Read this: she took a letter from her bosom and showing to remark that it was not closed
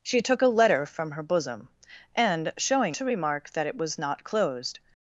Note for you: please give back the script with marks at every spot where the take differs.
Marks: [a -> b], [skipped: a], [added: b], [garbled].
she took a letter from her bosom and showing to remark that it was not closed